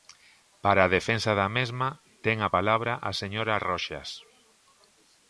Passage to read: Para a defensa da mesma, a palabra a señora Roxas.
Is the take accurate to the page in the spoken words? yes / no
no